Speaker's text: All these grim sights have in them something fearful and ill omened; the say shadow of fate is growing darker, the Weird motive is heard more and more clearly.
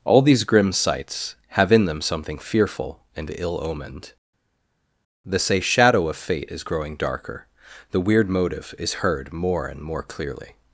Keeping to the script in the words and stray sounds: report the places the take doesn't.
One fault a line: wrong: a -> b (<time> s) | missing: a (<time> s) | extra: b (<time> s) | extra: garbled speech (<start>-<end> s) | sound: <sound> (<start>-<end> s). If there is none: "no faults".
no faults